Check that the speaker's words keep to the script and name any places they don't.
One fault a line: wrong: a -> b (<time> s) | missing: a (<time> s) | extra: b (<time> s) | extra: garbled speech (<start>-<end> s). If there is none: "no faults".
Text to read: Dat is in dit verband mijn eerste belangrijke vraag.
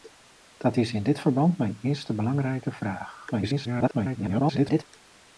extra: garbled speech (3.3-4.8 s)